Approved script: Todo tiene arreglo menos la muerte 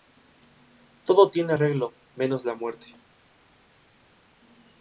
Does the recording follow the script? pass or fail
pass